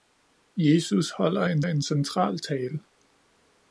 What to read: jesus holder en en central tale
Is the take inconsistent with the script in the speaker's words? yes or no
no